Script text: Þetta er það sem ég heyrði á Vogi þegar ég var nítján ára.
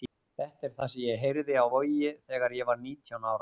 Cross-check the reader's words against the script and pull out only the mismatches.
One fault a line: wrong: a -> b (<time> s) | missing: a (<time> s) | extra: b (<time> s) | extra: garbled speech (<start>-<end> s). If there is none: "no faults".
no faults